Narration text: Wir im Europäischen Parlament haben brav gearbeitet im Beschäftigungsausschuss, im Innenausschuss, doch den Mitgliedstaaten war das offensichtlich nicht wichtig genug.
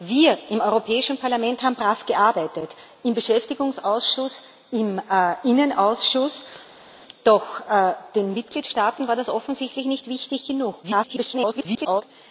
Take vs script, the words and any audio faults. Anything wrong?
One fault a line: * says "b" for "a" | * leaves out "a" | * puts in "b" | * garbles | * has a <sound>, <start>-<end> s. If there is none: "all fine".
* garbles